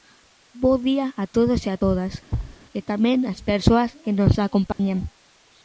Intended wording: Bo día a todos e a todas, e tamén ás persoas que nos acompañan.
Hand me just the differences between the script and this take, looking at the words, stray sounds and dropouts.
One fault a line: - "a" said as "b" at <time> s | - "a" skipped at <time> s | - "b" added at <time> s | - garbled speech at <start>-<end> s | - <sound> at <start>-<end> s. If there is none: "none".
- thud at 2.3-2.6 s
- dropout at 4.7-4.8 s